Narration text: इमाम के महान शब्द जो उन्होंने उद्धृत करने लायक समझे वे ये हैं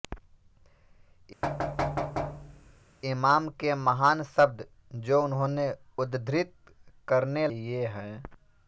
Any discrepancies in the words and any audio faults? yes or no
yes